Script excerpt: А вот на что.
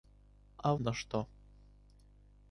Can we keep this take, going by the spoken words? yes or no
no